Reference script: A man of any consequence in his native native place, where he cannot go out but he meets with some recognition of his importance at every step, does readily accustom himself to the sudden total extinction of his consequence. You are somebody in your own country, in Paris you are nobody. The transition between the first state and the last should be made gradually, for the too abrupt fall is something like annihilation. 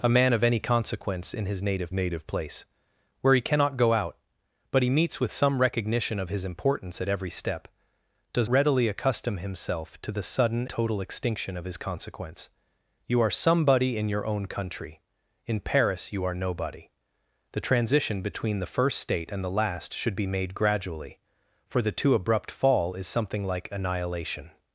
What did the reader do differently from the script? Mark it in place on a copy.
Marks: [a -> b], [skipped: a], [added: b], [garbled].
A man of any consequence in his native native place, where he cannot go out but he meets with some recognition of his importance at every step, does readily accustom himself to the sudden total extinction of his consequence. You are somebody in your own country, in Paris you are nobody. The transition between the first state and the last should be made gradually, for the too abrupt fall is something like annihilation.